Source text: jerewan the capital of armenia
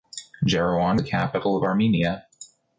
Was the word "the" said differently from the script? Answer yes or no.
no